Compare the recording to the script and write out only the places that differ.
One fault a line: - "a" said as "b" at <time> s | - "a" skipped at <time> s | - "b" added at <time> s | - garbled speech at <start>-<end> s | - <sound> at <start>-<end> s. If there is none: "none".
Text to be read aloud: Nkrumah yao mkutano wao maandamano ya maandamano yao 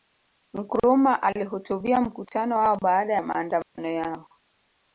- "yao" said as "alihutubia" at 1.2 s
- "maandamano" said as "baada" at 2.8 s
- dropout at 3.6-3.8 s